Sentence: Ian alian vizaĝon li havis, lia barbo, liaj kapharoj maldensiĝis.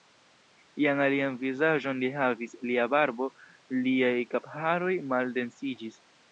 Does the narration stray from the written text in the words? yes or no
no